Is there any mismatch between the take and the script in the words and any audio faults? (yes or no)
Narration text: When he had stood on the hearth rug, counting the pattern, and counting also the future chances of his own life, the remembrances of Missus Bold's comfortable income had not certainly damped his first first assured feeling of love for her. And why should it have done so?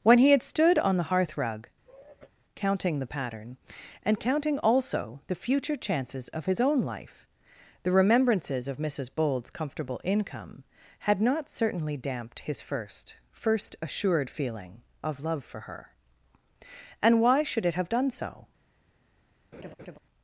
yes